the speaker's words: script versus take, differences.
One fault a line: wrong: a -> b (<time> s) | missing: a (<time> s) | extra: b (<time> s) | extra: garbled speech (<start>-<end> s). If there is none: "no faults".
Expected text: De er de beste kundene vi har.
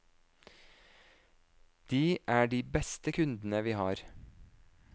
no faults